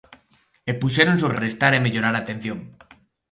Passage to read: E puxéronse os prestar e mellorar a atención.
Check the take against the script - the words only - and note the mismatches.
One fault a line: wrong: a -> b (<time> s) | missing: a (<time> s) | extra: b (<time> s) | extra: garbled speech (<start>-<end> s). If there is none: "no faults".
no faults